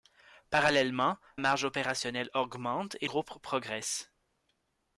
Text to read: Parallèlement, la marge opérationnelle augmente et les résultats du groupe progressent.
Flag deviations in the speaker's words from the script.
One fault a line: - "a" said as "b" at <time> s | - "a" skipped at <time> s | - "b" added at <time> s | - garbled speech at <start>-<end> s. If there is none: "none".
- "la" skipped at 1.2 s
- "les résultats du" skipped at 3.1 s